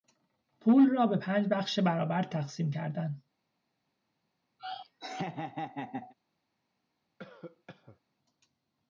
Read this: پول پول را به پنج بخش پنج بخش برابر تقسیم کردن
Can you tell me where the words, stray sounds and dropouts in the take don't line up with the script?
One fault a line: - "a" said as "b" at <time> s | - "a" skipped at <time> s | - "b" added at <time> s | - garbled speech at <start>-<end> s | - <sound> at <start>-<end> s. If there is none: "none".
- "پول" skipped at 0.9 s
- "پنج بخش" skipped at 1.8 s
- laugh at 4.6-6.1 s
- cough at 7.2-8.0 s